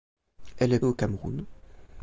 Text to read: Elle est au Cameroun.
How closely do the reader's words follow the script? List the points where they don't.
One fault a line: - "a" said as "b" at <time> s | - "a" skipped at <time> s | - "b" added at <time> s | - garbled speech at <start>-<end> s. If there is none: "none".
none